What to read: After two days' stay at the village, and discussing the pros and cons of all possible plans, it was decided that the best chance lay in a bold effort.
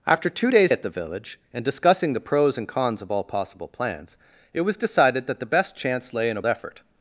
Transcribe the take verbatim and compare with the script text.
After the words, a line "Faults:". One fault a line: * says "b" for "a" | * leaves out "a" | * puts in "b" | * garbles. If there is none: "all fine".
After two days' at the village, and discussing the pros and cons of all possible plans, it was decided that the best chance lay in a effort.
Faults:
* leaves out "stay"
* leaves out "bold"